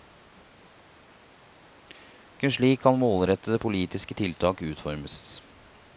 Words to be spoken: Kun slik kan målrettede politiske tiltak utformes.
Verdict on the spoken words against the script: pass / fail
pass